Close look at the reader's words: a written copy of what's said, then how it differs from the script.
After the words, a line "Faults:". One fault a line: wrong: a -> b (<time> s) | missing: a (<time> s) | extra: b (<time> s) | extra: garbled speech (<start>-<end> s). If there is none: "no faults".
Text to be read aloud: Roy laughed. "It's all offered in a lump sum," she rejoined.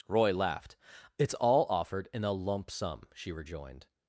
Roy laughed. "It's all offered in a lump sum," she rejoined.
Faults:
no faults